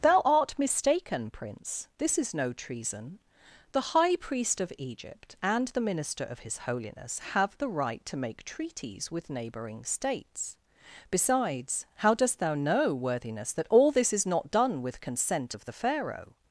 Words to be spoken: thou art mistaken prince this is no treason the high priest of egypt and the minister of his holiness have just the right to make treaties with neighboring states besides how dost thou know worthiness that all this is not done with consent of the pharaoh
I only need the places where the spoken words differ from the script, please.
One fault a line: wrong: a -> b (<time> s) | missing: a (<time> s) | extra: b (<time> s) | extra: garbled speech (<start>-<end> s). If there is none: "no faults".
missing: just (7.5 s)